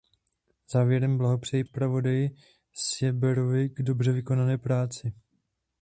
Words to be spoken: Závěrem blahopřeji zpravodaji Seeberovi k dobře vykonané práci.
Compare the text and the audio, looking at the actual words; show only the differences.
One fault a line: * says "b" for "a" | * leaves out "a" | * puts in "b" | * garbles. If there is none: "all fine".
all fine